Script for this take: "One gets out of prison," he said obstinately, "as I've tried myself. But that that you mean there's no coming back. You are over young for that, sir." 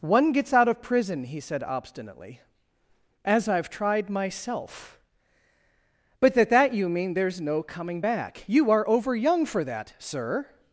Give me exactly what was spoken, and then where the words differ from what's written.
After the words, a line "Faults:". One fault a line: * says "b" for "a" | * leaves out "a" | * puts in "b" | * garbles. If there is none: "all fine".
"One gets out of prison," he said obstinately, "as I've tried myself. But that that you mean there's no coming back. You are over young for that, sir."
Faults:
all fine